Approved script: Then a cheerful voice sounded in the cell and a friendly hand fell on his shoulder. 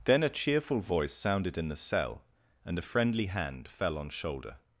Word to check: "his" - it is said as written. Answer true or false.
false